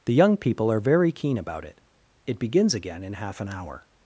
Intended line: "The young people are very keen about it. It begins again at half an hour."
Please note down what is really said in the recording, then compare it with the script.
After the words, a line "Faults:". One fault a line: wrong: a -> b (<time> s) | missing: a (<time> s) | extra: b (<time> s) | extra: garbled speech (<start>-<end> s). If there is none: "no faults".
"The young people are very keen about it. It begins again in half an hour."
Faults:
wrong: at -> in (3.0 s)